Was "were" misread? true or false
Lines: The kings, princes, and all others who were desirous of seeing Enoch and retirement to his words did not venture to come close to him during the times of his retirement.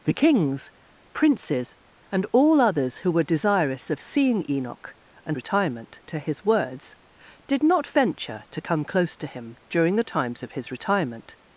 false